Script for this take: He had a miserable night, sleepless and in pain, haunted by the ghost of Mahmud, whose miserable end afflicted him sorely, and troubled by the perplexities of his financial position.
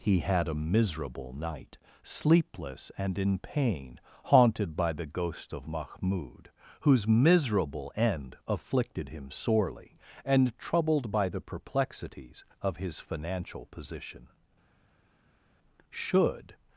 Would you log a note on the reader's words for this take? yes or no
yes